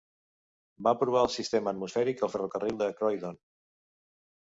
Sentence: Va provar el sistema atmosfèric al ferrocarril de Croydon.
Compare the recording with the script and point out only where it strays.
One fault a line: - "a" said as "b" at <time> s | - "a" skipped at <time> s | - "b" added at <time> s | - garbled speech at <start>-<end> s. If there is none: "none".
none